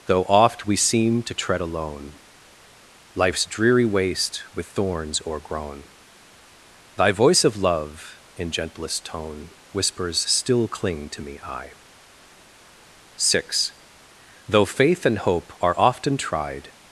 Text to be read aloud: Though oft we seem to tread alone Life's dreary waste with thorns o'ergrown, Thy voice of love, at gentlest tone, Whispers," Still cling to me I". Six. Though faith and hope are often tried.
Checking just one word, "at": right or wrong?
wrong